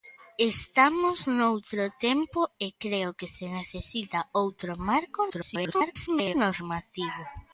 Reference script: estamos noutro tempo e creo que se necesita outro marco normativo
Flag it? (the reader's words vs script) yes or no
yes